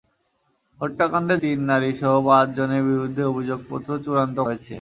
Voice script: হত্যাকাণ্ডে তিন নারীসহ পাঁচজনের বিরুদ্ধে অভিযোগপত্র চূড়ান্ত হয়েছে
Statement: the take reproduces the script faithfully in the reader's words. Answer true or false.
true